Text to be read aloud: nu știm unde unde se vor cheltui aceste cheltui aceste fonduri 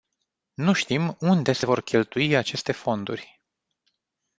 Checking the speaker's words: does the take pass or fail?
fail